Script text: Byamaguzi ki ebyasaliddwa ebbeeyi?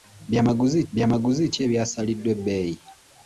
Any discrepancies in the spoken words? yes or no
yes